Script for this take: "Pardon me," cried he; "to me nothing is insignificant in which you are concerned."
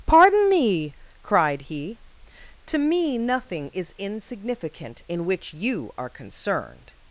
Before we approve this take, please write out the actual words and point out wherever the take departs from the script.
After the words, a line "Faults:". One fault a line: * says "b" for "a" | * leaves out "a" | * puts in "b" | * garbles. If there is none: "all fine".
"Pardon me," cried he; "to me nothing is insignificant in which you are concerned."
Faults:
all fine